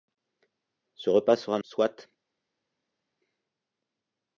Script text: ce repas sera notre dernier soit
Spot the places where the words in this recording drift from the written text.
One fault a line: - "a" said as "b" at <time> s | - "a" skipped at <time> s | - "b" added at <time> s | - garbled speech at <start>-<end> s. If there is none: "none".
- "notre dernier" skipped at 1.6 s